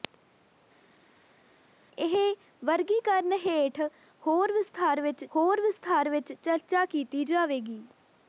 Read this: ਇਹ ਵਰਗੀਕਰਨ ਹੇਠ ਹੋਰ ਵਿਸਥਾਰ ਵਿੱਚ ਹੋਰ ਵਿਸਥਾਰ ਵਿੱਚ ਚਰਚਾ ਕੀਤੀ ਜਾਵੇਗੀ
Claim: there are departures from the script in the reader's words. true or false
false